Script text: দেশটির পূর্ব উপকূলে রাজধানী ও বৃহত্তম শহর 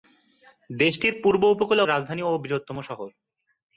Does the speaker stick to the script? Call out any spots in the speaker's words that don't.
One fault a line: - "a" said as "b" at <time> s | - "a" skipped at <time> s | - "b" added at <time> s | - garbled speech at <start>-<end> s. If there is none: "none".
none